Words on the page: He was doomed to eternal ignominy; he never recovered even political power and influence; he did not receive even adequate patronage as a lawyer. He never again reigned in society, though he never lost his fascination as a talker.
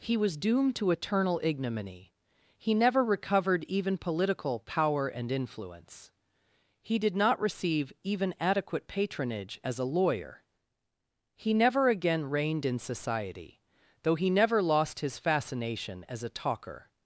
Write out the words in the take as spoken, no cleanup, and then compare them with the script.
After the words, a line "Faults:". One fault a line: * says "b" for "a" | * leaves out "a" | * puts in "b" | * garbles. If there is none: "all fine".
He was doomed to eternal ignominy; he never recovered even political power and influence; he did not receive even adequate patronage as a lawyer. He never again reigned in society, though he never lost his fascination as a talker.
Faults:
all fine